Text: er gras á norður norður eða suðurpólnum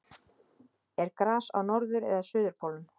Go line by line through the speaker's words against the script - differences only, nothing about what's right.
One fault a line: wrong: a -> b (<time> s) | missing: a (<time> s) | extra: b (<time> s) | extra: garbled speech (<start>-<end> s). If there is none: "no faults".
missing: norður (2.1 s)